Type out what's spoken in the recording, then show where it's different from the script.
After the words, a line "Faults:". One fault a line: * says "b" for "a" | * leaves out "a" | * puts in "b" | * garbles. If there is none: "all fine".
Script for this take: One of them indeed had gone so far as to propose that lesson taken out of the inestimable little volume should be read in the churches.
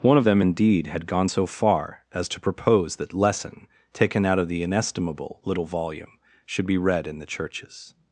One of them indeed had gone so far as to propose that lesson taken out of the inestimable little volume should be read in the churches.
Faults:
all fine